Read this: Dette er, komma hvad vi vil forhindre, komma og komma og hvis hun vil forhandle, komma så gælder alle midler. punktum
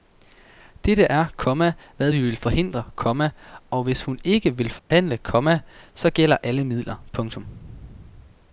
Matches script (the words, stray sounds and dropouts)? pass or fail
fail